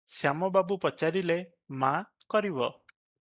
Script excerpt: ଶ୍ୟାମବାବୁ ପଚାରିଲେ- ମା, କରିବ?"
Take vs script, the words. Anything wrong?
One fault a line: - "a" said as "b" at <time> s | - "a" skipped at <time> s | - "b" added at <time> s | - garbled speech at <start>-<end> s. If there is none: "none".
none